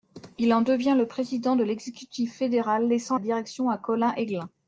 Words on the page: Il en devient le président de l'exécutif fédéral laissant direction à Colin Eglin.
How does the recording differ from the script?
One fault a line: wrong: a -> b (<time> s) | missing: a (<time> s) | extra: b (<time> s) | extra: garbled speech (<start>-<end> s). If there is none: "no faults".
no faults